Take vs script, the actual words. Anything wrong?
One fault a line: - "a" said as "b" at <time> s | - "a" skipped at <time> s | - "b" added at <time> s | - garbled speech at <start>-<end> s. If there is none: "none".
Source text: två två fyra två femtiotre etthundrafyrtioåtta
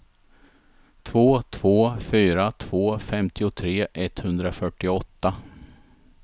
none